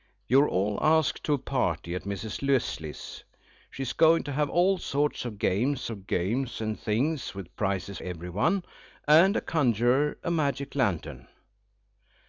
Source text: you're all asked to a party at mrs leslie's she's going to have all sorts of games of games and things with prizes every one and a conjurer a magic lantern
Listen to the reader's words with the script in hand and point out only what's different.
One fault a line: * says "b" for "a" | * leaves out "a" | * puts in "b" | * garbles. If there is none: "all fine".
all fine